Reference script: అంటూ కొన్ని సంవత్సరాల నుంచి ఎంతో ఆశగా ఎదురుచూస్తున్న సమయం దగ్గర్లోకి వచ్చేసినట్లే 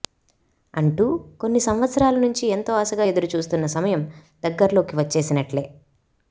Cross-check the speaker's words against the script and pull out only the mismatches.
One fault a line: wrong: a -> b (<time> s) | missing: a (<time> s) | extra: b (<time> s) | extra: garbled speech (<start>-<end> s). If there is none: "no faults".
no faults